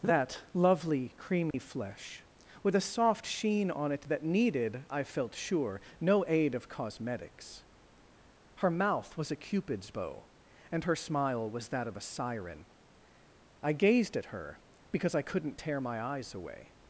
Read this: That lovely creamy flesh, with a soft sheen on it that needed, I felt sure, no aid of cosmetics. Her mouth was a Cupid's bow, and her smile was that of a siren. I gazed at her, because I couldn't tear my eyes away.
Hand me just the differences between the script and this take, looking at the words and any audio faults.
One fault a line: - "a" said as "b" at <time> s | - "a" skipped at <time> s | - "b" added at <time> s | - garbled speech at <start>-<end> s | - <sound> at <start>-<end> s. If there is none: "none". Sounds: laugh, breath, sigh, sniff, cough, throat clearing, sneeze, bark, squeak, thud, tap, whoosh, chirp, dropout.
- dropout at 1.5-1.5 s